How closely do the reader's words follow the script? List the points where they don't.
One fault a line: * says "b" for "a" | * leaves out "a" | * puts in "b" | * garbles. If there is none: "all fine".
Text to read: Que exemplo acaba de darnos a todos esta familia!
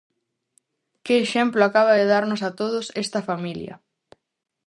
all fine